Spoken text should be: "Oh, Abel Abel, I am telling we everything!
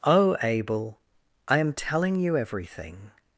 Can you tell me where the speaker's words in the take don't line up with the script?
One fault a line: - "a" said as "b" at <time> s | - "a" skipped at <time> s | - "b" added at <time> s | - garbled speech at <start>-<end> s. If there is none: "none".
- "Abel" skipped at 1.0 s
- "we" said as "you" at 2.2 s